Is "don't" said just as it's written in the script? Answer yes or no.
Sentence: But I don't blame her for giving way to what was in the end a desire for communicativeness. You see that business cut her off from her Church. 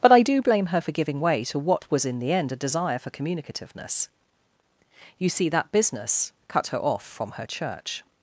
no